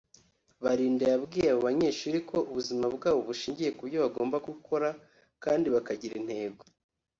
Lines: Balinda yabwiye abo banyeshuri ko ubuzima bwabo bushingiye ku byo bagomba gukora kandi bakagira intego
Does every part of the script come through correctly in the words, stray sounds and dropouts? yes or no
yes